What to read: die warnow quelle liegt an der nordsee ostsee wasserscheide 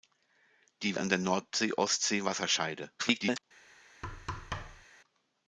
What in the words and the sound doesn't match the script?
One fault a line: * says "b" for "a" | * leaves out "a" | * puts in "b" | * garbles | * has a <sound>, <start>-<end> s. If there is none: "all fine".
* leaves out "warnow quelle liegt"
* garbles
* has a thud, 4.0-4.9 s